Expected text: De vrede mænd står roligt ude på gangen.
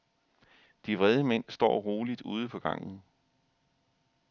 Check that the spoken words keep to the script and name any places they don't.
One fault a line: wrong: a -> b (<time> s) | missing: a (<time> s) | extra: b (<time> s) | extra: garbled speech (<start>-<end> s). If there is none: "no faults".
no faults